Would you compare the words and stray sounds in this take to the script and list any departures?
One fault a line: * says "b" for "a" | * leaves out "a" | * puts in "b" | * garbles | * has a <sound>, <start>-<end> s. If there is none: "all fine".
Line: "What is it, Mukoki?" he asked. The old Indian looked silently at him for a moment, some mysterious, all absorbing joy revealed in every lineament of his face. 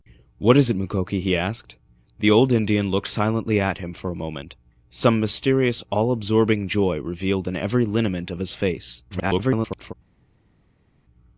* garbles